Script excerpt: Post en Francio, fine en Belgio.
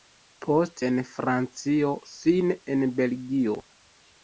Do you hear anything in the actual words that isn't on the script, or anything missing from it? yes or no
no